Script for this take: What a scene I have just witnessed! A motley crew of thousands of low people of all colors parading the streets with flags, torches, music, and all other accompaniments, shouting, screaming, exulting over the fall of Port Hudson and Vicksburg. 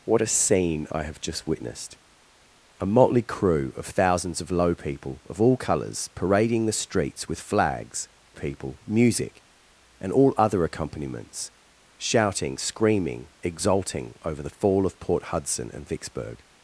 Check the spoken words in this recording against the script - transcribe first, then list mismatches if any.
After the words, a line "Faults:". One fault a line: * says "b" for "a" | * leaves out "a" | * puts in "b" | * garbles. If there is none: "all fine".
What a scene I have just witnessed! A motley crew of thousands of low people of all colors parading the streets with flags, people, music, and all other accompaniments, shouting, screaming, exulting over the fall of Port Hudson and Vicksburg.
Faults:
* says "people" for "torches"